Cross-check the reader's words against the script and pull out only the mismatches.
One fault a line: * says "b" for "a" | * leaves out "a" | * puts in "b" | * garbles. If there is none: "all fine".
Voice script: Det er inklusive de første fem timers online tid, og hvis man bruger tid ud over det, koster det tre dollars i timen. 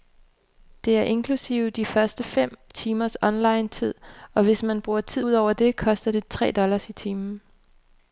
all fine